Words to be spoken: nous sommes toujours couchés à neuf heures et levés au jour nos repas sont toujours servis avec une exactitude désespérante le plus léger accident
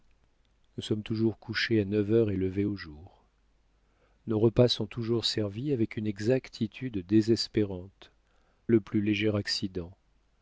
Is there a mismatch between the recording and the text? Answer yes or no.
no